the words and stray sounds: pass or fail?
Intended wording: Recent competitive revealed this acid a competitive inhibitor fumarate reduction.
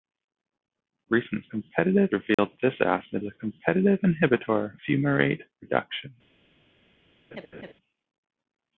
fail